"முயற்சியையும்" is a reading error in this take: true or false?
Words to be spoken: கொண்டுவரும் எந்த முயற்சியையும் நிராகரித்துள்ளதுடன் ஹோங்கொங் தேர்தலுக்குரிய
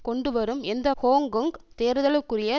true